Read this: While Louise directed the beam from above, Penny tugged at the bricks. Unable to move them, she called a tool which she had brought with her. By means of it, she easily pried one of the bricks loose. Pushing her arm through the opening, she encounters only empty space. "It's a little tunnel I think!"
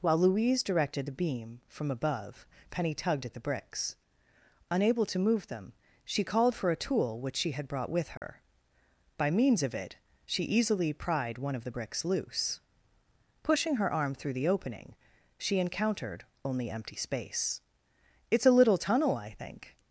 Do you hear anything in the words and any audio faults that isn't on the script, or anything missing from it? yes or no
yes